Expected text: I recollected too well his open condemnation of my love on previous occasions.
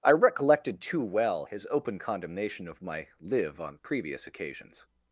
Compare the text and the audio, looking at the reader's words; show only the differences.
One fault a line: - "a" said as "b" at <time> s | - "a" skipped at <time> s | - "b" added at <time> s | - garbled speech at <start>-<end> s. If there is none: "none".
- "love" said as "live" at 3.2 s